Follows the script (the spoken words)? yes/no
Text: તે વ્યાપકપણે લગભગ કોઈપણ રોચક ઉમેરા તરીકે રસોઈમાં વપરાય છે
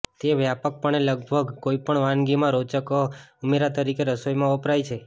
no